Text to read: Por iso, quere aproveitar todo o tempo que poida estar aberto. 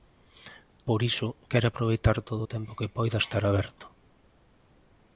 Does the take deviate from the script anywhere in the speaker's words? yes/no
no